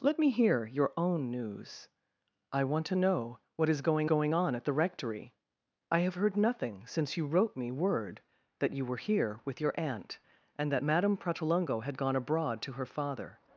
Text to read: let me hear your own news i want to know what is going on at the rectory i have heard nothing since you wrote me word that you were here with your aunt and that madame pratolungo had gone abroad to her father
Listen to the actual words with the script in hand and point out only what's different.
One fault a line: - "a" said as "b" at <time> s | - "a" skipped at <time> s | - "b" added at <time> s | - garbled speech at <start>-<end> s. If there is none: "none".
- "going" added at 4.0 s